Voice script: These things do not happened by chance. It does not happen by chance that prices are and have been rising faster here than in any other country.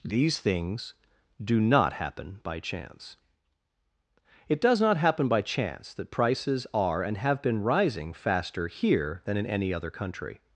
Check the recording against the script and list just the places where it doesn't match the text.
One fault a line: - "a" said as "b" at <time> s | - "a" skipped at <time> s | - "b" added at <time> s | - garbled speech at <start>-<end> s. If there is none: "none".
- "happened" said as "happen" at 1.9 s